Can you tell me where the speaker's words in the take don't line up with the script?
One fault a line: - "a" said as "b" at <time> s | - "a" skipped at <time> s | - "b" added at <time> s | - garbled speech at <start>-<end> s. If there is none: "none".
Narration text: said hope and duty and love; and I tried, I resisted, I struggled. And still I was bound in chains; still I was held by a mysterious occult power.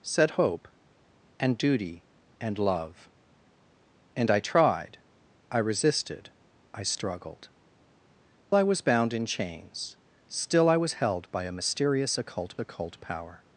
- "And still" skipped at 7.5 s
- "occult" added at 12.6 s